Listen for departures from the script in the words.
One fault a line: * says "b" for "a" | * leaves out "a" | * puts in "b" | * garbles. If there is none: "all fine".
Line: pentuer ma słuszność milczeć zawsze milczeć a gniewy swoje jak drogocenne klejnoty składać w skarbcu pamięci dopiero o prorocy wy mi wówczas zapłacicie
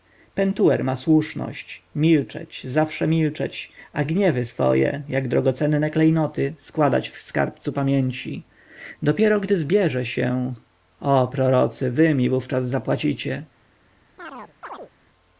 * puts in "gdy zbierze się"